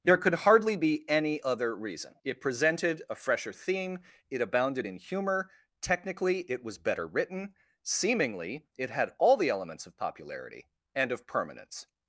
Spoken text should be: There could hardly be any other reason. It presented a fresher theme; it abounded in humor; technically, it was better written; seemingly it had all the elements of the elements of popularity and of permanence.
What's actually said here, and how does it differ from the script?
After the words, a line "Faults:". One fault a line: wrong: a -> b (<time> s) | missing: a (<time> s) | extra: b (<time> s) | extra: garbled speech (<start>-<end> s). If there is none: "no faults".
There could hardly be any other reason. It presented a fresher theme; it abounded in humor; technically, it was better written; seemingly it had all the elements of popularity and of permanence.
Faults:
missing: the elements of (10.0 s)